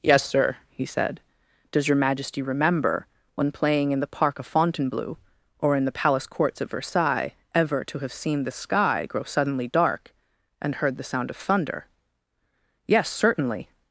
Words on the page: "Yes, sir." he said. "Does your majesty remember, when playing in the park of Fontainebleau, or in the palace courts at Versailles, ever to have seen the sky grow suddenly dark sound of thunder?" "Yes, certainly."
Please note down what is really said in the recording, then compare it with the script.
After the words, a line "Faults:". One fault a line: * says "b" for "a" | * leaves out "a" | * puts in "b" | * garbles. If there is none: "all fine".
"Yes, sir." he said. "Does your majesty remember, when playing in the park of Fontainebleau, or in the palace courts at Versailles, ever to have seen the sky grow suddenly dark and heard the sound of thunder?" "Yes, certainly."
Faults:
* puts in "and heard the"